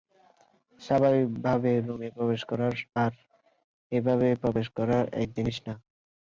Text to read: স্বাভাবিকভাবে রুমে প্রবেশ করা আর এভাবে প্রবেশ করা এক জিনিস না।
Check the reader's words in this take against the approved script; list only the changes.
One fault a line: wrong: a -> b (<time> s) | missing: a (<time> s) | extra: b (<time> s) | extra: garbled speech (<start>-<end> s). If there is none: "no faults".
no faults